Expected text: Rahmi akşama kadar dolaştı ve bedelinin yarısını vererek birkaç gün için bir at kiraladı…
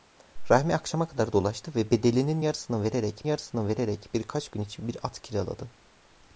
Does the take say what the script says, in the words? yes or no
no